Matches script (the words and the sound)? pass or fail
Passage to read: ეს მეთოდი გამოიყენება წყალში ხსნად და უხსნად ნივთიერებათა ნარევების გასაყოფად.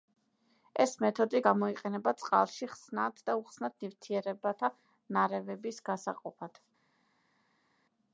pass